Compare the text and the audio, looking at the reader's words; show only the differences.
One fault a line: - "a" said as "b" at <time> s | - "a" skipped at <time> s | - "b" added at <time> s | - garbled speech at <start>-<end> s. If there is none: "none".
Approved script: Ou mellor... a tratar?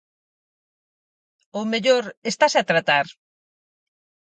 - "estase" added at 2.3 s